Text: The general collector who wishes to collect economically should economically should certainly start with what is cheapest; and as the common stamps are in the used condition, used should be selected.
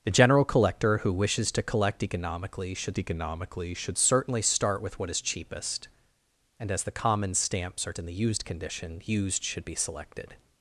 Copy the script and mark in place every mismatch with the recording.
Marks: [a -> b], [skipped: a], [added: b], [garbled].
The general collector who wishes to collect economically should economically should certainly start with what is cheapest; and as the common stamps are in the used condition, used should be selected.